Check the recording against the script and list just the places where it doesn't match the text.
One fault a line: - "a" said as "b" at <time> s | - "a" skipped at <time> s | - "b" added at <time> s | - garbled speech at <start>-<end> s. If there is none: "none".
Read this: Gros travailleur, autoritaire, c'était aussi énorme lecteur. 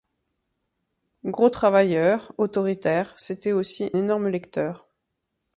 none